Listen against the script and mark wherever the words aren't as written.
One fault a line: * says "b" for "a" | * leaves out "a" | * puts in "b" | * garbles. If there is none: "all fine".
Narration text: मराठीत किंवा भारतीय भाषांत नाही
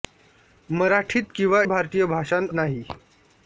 all fine